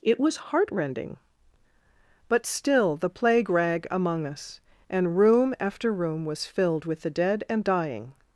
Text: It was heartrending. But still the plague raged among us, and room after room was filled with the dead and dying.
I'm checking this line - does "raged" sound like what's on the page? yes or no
no